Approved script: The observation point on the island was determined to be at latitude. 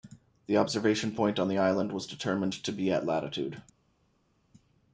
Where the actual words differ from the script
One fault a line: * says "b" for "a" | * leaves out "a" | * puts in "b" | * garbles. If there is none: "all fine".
all fine